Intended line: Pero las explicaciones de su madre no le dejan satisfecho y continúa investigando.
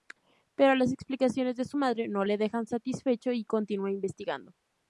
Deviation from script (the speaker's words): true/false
false